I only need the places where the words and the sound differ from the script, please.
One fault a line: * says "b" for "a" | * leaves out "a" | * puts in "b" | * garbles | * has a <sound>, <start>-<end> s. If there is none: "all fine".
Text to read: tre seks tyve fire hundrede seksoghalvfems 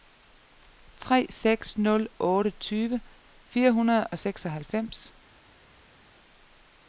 * puts in "nul otte"
* puts in "og"